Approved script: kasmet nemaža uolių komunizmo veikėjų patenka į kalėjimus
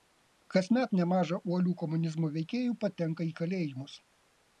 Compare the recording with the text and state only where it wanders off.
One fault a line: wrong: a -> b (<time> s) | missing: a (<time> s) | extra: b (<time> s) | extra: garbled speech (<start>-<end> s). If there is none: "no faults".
no faults